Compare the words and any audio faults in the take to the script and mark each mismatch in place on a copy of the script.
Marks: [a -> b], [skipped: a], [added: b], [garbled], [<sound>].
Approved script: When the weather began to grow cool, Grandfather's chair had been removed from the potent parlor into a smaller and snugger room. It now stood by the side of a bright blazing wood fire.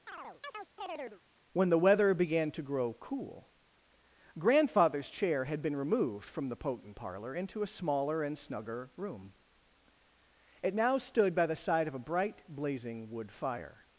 [chirp] When the weather began to grow cool, Grandfather's chair had been removed from the potent parlor into a smaller and snugger room. It now stood by the side of a bright blazing wood fire.